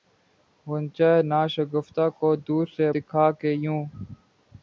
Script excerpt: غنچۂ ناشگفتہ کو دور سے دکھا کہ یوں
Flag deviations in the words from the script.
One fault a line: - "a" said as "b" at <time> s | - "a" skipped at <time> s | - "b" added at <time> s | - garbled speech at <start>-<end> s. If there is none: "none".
none